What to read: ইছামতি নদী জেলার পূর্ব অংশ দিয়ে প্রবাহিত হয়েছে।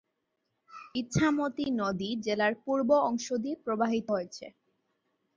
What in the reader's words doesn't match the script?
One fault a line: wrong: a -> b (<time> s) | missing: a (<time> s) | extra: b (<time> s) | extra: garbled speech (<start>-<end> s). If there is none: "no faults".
no faults